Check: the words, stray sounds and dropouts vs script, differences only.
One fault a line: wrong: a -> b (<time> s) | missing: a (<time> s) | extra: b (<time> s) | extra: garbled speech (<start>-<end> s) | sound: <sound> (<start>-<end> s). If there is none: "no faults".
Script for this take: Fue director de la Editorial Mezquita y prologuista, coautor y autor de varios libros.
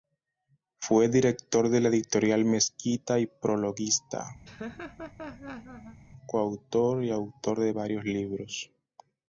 sound: laugh (4.4-6.0 s)